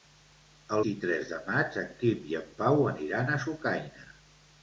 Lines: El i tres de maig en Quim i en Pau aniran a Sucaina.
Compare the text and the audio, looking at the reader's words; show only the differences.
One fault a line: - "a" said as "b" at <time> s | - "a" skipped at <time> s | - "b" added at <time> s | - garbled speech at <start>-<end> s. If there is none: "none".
none